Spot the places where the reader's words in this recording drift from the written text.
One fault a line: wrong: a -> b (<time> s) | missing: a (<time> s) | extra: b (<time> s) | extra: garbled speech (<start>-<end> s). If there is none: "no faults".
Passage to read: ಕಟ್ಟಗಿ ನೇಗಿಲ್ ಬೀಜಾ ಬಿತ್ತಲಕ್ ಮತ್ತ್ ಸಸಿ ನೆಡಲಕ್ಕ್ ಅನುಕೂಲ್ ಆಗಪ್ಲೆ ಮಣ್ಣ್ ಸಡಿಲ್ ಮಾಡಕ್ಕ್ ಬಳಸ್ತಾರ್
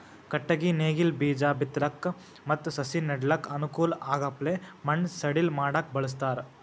no faults